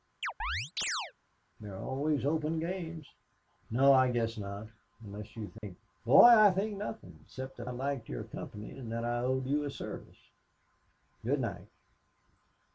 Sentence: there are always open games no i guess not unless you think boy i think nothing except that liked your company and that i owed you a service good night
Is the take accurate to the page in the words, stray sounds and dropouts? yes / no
no